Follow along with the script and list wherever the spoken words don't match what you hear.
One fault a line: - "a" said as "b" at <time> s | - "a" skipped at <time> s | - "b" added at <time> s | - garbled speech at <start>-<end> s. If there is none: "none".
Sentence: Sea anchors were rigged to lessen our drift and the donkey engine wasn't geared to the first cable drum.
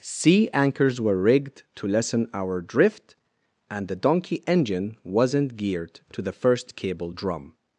none